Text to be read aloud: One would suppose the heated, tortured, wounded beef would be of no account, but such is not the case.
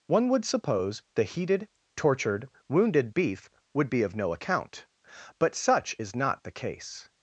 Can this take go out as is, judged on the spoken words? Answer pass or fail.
pass